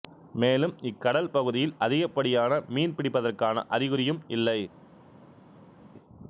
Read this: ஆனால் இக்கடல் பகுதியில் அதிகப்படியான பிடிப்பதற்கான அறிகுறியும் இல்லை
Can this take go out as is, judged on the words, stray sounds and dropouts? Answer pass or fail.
fail